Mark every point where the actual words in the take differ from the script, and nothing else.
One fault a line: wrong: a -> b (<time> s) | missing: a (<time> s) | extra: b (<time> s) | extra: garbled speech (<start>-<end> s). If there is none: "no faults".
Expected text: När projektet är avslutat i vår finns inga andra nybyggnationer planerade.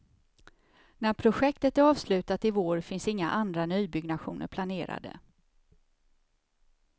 no faults